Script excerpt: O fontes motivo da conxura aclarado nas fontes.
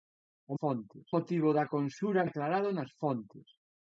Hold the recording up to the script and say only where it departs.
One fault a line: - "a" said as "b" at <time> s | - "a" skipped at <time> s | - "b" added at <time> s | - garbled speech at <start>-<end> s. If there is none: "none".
none